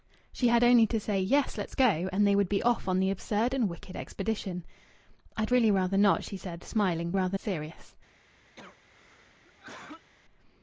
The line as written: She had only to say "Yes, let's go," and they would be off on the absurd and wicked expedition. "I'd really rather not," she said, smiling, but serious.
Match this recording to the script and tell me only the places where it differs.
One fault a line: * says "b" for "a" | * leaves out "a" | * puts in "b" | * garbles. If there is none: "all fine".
* says "rather" for "but"